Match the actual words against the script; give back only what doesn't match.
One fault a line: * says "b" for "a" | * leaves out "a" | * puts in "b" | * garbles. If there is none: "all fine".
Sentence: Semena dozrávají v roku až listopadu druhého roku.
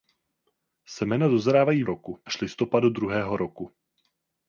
all fine